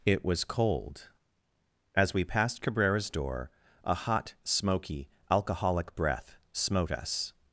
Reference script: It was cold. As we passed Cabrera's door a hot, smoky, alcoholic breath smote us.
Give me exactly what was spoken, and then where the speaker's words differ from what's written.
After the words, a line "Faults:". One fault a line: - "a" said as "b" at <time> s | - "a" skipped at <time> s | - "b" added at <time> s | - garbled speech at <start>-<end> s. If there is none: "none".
It was cold. As we passed Cabrera's door a hot, smoky, alcoholic breath smote us.
Faults:
none